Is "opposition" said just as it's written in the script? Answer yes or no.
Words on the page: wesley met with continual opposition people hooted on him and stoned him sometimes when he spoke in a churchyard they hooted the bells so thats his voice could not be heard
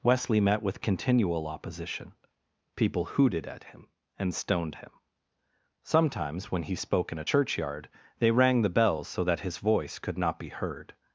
yes